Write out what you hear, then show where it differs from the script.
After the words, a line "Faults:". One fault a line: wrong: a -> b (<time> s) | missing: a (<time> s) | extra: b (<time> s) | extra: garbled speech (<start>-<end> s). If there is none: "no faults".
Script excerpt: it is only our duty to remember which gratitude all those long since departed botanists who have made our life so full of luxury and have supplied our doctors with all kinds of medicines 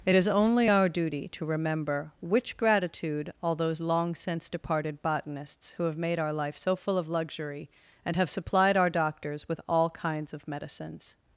it is only our duty to remember which gratitude all those long since departed botanists who have made our life so full of luxury and have supplied our doctors with all kinds of medicines
Faults:
no faults